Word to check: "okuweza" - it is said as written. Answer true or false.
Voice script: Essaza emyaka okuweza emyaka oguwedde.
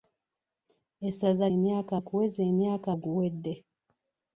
true